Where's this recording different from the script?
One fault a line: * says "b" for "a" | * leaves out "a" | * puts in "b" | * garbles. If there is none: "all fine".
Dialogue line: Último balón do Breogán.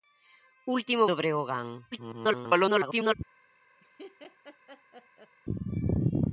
* leaves out "balón"
* garbles